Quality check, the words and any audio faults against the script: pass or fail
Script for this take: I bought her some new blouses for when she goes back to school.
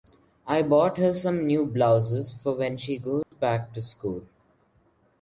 fail